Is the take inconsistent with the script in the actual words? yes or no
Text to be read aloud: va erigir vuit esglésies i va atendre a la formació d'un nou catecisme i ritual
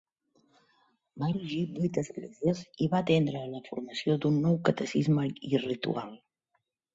no